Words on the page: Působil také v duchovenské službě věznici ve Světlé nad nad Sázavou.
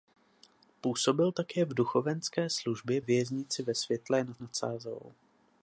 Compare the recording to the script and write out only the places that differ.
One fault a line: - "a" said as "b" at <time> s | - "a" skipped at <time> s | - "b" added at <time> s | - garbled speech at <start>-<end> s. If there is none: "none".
none